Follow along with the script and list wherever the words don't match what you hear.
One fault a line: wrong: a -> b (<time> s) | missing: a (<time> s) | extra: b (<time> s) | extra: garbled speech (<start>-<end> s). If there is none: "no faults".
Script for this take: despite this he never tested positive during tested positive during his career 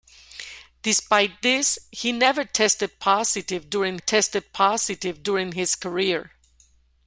no faults